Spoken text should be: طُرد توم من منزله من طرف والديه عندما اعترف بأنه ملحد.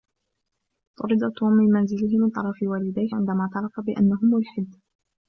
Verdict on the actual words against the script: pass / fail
pass